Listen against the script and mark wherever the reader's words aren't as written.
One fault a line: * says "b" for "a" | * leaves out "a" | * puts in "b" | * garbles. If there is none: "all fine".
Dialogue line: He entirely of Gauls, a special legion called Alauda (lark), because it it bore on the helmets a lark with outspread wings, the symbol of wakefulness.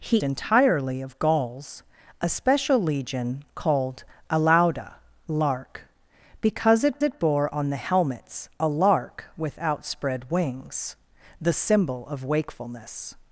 all fine